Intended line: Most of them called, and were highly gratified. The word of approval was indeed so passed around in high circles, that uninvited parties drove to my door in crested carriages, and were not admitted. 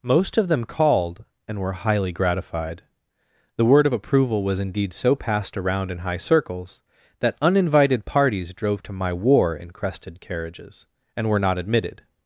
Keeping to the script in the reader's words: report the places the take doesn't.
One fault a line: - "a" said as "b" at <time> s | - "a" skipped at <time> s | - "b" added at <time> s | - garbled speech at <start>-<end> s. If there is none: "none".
- "door" said as "war" at 9.1 s